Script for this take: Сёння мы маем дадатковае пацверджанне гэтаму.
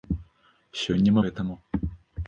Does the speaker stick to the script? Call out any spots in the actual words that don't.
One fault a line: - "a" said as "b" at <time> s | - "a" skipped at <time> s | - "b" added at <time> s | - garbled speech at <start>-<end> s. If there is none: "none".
- "маем дадатковае пацверджанне" skipped at 1.2 s